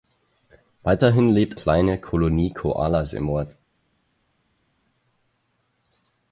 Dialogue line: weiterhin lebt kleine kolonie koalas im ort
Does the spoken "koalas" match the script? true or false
true